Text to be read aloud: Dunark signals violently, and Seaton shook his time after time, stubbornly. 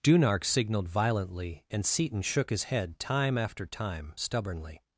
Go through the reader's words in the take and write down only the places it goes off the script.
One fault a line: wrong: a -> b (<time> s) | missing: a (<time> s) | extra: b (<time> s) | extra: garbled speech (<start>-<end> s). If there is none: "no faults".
wrong: signals -> signaled (0.4 s)
extra: head (2.6 s)